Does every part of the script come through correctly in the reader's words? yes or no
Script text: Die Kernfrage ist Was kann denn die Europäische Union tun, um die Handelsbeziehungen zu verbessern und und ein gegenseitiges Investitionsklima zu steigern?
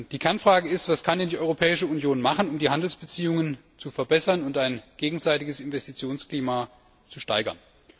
no